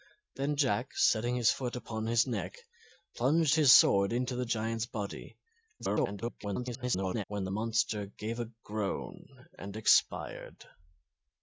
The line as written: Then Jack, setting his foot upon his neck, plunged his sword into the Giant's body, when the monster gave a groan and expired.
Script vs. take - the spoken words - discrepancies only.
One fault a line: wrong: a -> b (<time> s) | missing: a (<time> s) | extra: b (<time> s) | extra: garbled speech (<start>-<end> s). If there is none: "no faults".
extra: garbled speech (5.8-7.2 s)